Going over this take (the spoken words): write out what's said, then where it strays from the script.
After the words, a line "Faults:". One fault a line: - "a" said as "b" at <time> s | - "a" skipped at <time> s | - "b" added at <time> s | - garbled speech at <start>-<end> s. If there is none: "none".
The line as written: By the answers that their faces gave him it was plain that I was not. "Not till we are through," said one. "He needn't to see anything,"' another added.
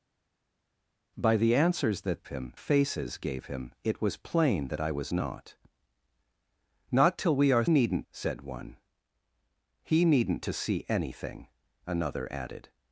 By the answers that him faces gave him it was plain that I was not. "Not till we are needn't," said one. "He needn't to see anything,"' another added.
Faults:
- "their" said as "him" at 2.3 s
- "through" said as "needn't" at 7.7 s